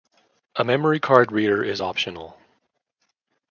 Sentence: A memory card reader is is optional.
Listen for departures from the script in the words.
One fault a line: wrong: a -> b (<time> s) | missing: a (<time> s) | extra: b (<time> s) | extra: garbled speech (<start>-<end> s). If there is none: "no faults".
missing: is (1.8 s)